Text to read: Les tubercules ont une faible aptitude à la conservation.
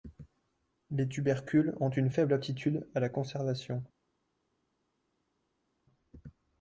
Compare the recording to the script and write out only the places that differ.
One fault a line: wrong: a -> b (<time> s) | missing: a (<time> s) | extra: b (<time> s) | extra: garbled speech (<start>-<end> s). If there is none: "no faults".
no faults